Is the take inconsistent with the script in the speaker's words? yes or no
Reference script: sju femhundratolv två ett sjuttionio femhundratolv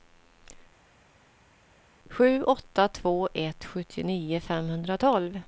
yes